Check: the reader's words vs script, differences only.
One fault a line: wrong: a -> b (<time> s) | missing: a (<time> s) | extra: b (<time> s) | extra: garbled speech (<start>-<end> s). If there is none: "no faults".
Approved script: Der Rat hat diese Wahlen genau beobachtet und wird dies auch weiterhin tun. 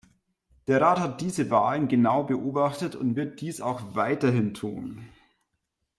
no faults